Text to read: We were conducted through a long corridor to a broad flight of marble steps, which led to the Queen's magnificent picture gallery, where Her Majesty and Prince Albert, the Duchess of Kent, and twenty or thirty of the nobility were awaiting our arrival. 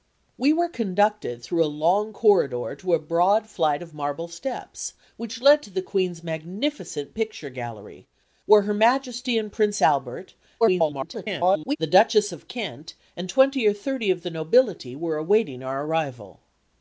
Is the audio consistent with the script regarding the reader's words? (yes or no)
no